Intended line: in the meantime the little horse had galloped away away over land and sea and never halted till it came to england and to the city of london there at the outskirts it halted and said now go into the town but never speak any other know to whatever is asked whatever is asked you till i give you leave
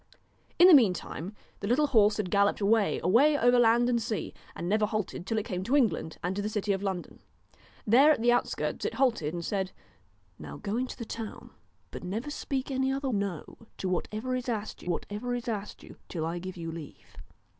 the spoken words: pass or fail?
pass